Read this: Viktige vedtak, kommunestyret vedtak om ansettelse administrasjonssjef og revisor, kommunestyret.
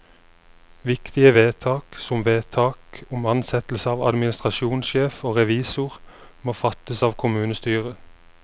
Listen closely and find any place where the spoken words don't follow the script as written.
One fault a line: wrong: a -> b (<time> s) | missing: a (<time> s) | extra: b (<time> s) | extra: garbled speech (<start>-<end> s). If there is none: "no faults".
wrong: kommunestyret -> som (2.0 s)
extra: av (3.9 s)
extra: må fattes av (6.4 s)